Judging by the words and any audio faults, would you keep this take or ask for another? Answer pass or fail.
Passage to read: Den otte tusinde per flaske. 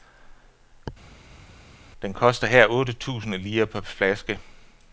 fail